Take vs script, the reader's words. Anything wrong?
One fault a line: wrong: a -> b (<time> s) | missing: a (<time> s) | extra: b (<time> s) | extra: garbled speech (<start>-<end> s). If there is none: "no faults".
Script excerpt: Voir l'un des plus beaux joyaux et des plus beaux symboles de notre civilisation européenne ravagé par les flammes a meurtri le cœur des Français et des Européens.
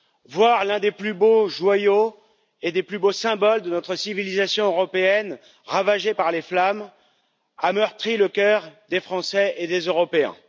no faults